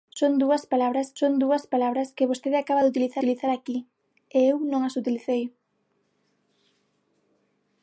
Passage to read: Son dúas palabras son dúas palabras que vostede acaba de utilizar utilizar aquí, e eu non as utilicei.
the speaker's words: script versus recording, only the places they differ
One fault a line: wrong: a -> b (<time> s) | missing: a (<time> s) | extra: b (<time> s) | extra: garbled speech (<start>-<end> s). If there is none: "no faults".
no faults